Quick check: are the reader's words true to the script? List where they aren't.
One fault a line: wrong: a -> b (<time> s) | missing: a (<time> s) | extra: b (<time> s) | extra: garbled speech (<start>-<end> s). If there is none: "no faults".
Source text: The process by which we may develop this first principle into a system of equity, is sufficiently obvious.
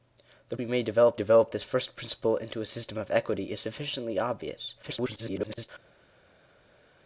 missing: process by which (0.6 s)
extra: develop (1.1 s)
extra: garbled speech (4.8-5.7 s)